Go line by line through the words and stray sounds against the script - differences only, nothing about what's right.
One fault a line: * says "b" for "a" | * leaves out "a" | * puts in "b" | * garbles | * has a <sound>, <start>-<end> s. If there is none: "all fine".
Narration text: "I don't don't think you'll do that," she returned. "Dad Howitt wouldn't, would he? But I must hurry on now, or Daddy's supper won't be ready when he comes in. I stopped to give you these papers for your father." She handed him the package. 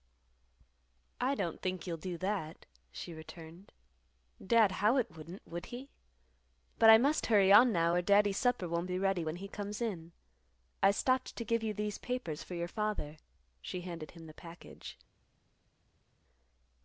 * leaves out "don't"